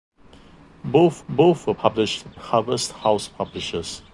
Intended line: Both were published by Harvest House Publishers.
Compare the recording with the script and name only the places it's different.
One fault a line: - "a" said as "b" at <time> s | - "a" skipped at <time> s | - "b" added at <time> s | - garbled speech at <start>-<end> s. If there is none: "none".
- "both" added at 1.3 s
- "by" skipped at 2.2 s